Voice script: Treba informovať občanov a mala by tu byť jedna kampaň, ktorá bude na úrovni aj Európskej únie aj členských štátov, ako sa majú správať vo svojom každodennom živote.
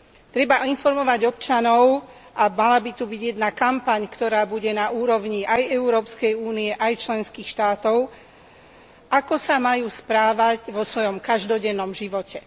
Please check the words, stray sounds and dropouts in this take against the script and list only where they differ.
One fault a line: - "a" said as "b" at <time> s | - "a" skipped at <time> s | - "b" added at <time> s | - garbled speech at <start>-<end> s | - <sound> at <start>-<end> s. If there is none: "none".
none